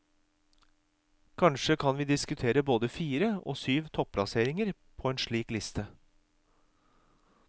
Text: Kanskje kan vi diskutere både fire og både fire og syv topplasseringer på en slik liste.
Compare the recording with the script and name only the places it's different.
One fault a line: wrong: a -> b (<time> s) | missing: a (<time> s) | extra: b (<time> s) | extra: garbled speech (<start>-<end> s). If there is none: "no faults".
missing: både fire og (3.6 s)